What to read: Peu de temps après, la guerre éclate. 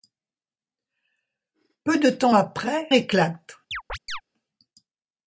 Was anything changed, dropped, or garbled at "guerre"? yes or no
yes